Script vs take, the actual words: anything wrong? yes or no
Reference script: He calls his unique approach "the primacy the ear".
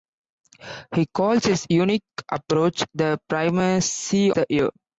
no